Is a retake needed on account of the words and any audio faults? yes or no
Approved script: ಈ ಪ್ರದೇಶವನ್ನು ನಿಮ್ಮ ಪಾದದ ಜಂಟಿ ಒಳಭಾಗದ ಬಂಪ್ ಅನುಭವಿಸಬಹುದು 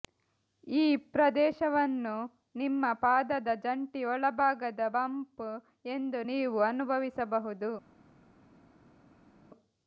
yes